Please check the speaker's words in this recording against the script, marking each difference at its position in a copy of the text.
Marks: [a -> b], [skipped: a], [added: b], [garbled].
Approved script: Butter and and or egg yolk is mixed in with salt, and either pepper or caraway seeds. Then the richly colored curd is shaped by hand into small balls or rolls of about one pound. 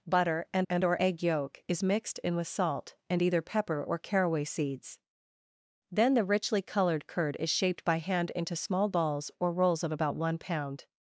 Butter and and or egg yolk is mixed in with salt, and either pepper or caraway seeds. Then the richly colored curd is shaped by hand into small balls or rolls of about one pound.